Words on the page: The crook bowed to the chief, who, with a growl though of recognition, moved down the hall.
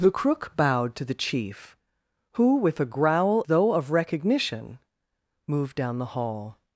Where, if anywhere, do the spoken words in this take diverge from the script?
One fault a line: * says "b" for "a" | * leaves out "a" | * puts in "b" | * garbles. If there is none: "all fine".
all fine